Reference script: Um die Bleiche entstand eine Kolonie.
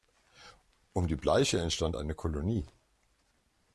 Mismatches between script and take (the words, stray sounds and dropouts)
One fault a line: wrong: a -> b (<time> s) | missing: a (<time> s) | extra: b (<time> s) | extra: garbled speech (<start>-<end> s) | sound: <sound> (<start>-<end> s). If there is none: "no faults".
no faults